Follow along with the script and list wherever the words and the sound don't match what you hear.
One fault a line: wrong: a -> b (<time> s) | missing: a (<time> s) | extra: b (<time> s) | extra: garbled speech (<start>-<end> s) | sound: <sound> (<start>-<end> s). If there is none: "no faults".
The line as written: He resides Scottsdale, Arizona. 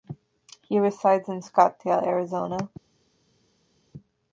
extra: in (1.3 s)